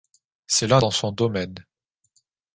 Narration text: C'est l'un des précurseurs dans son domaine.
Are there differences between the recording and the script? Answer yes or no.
yes